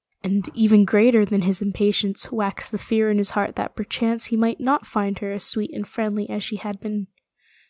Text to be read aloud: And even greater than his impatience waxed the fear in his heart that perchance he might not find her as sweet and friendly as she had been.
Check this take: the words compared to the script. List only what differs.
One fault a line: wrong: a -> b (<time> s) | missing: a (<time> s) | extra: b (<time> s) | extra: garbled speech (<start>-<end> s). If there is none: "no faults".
no faults